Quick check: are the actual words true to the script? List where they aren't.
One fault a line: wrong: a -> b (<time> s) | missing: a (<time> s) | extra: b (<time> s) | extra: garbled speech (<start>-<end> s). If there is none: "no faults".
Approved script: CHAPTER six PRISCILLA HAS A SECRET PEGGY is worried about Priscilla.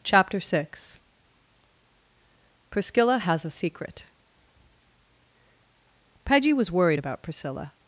wrong: is -> was (6.5 s)